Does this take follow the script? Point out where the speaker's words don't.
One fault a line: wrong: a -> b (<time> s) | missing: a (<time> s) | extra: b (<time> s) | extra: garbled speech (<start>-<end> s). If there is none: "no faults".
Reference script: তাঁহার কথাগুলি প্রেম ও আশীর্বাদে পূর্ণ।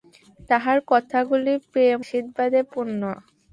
missing: ও (2.0 s)